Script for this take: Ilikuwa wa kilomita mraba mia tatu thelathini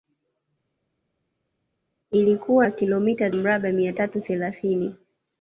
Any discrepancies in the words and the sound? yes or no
no